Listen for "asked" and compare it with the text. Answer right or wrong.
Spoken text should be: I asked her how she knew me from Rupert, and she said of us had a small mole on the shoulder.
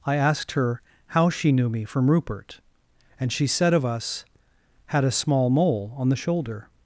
right